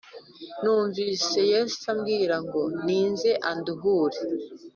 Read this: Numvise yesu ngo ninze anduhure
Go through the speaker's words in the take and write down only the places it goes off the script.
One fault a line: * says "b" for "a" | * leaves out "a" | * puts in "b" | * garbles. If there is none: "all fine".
* puts in "ambwira"